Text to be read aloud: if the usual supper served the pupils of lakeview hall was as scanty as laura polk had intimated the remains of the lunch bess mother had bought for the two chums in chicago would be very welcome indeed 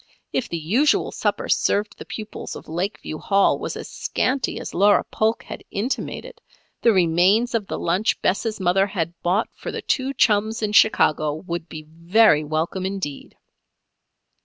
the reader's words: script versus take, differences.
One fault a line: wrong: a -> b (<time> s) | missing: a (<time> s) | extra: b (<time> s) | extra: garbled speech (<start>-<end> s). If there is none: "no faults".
no faults